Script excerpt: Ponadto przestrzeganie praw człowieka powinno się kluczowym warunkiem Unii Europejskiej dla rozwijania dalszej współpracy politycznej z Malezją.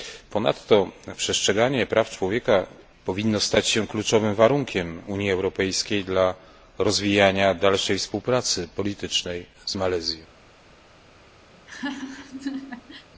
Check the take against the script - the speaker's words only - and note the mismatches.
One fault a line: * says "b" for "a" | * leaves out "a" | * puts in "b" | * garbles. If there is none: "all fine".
* puts in "stać"